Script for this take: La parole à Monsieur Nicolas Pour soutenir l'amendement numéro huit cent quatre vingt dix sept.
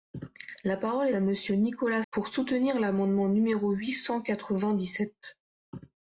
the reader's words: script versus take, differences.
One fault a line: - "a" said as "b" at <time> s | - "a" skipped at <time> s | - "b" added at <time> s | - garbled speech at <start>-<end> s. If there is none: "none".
none